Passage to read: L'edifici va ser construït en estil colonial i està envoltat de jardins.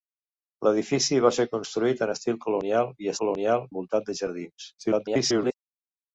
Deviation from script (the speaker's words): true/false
true